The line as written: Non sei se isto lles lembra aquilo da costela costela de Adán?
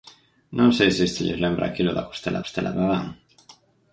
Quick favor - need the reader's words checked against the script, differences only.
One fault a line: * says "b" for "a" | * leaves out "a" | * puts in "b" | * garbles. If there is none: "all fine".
all fine